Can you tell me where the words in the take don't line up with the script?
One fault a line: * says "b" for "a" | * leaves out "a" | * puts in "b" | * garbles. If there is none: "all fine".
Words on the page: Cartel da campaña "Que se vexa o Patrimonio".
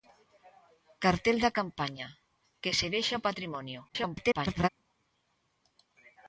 * garbles